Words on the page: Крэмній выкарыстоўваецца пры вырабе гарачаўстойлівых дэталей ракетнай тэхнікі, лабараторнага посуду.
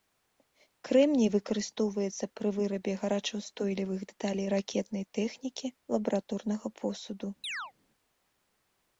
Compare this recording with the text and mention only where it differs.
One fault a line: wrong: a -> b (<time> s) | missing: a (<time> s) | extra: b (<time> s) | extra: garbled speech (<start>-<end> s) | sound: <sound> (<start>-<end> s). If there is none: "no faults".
sound: chirp (7.4-7.7 s)